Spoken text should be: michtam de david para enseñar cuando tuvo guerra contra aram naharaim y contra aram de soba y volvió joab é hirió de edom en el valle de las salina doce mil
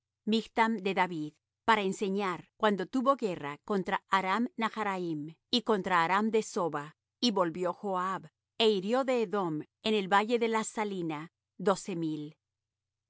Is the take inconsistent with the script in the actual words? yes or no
no